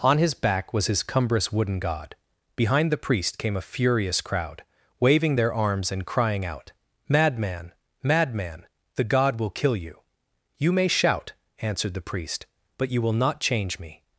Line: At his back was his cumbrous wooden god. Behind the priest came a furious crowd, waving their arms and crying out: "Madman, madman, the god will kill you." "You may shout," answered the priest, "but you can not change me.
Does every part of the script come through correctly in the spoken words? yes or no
no